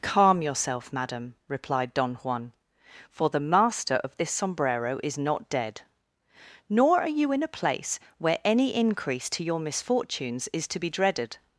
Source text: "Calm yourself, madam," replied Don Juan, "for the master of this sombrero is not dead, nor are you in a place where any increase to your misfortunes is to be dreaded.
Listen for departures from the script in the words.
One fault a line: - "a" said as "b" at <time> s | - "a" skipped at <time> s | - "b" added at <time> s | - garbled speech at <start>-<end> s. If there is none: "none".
none